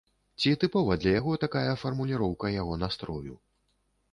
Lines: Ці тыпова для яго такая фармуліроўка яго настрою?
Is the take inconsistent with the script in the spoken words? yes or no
no